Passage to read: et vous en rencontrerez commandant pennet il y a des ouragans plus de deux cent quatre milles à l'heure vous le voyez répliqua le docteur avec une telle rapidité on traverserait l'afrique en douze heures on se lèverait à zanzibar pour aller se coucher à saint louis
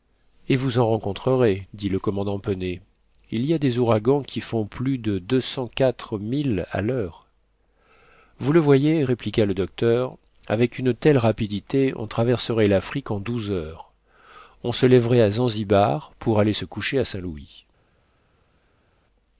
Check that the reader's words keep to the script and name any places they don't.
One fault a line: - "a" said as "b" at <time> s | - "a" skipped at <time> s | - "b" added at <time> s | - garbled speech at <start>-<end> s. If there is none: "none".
- "dit le" added at 1.8 s
- "qui font" added at 4.2 s